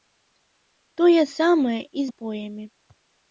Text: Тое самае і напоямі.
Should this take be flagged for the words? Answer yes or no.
no